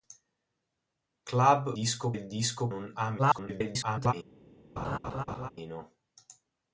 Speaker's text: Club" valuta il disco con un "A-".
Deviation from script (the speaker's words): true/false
true